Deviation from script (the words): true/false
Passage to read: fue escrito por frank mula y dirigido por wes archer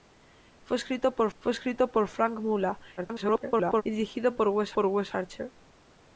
true